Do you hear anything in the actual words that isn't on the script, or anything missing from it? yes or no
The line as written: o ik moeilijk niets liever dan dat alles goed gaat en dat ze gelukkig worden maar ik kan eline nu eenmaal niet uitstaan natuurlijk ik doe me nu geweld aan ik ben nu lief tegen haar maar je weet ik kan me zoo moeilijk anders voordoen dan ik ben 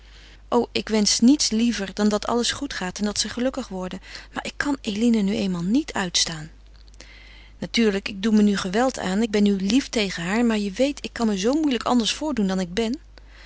yes